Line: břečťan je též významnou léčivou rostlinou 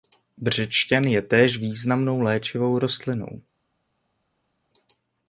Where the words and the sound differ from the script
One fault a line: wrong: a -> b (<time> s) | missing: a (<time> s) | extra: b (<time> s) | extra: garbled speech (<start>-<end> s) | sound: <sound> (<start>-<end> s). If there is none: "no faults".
no faults